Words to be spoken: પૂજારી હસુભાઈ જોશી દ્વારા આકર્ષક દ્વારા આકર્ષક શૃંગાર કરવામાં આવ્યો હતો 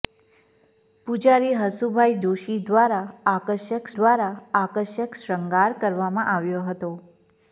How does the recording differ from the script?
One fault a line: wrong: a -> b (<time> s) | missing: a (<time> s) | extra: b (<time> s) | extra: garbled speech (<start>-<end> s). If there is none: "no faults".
no faults